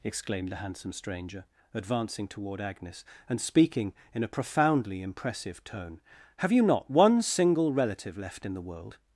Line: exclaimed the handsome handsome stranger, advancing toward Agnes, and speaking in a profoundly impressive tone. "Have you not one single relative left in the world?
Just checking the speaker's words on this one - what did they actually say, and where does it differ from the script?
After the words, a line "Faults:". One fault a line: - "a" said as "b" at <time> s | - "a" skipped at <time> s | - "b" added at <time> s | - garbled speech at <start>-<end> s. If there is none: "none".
exclaimed the handsome stranger, advancing toward Agnes, and speaking in a profoundly impressive tone. "Have you not one single relative left in the world?
Faults:
- "handsome" skipped at 0.9 s